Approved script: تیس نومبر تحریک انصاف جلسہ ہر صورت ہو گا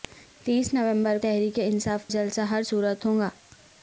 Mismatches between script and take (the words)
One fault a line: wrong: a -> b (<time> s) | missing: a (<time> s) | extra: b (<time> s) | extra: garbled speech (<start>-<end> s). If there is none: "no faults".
no faults